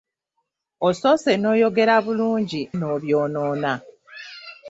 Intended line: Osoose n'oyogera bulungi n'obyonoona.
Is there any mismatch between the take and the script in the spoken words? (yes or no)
no